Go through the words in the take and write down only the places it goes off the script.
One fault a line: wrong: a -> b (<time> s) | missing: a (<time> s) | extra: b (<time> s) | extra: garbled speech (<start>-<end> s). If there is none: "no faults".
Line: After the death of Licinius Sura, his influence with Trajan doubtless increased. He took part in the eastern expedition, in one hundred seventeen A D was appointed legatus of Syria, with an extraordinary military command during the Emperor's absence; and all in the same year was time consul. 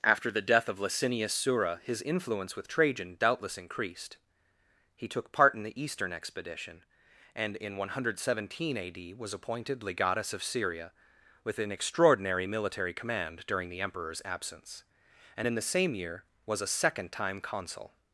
extra: and (7.3 s)
missing: all (15.5 s)
extra: a second (16.6 s)